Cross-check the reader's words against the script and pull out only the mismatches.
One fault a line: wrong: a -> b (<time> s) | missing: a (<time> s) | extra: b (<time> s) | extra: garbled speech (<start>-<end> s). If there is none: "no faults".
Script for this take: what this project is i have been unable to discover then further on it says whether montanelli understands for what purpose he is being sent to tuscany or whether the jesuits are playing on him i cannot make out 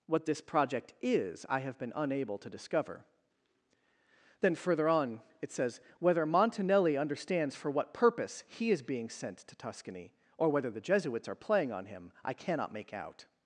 no faults